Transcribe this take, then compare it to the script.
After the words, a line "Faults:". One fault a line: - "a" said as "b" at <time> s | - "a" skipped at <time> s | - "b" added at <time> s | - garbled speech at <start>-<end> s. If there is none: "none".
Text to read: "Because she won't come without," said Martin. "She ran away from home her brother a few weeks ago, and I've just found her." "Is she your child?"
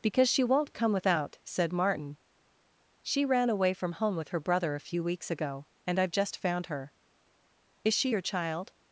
"Because she won't come without," said Martin. "She ran away from home with her brother a few weeks ago, and I've just found her." "Is she your child?"
Faults:
- "with" added at 4.2 s